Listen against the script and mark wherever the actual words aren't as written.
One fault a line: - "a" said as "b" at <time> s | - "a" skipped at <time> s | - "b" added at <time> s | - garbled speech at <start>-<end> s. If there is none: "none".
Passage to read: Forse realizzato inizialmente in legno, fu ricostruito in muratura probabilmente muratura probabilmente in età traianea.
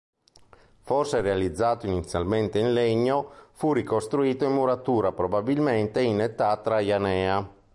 - "muratura probabilmente" skipped at 6.0 s